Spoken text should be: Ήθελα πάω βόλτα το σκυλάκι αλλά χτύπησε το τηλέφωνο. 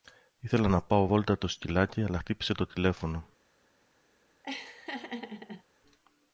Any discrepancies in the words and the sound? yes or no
yes